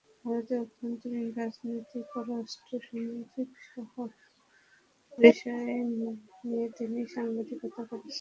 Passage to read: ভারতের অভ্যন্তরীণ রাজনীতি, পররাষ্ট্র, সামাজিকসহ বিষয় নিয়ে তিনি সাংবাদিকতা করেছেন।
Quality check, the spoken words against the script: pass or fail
pass